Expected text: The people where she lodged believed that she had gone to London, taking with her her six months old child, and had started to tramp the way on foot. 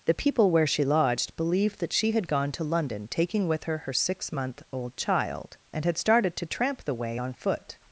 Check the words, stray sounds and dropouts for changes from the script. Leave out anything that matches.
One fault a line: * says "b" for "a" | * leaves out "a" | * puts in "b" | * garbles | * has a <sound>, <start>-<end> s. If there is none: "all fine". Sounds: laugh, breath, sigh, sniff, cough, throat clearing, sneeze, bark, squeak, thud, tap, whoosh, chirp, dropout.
* says "month" for "months"